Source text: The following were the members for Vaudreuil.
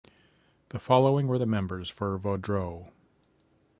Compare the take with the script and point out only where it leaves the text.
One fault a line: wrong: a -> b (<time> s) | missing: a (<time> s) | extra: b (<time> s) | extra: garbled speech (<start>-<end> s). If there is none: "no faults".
no faults